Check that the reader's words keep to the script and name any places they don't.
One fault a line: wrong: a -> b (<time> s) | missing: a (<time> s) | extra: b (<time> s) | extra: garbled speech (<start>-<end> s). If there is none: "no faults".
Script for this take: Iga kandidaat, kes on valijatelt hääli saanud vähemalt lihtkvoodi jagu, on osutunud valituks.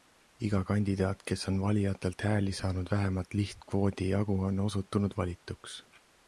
no faults